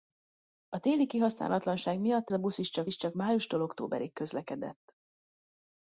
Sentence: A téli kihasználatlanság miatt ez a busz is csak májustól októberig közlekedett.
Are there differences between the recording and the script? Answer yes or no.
yes